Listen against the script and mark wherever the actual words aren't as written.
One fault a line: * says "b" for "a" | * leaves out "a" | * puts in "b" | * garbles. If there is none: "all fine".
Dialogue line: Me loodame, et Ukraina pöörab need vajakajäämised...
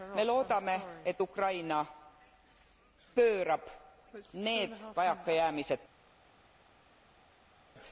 all fine